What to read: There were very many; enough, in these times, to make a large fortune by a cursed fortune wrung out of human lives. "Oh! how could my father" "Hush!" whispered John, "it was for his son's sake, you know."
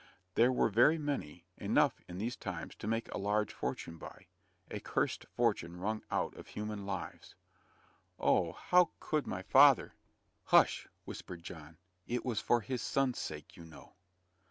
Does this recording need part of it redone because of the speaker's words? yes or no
no